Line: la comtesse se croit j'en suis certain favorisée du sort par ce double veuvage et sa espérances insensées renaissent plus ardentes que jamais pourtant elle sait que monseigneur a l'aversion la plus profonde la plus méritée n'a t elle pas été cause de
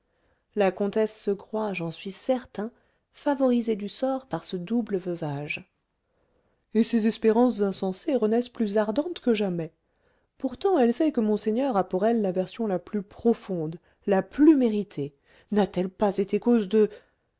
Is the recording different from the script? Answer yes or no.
yes